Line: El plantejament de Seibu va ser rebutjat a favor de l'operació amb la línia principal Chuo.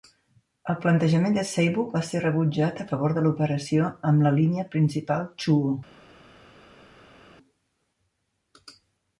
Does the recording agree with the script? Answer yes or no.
yes